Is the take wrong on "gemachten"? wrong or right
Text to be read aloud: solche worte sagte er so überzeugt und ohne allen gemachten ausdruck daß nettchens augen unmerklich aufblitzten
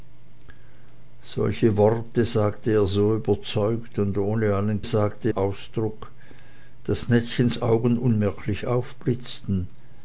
wrong